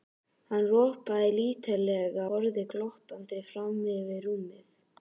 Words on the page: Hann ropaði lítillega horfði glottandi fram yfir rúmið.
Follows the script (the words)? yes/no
yes